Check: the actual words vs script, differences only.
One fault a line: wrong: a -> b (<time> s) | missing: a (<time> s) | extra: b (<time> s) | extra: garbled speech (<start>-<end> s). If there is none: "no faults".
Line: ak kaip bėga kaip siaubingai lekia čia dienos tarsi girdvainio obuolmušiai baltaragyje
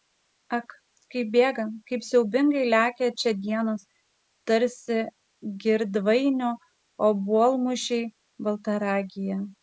no faults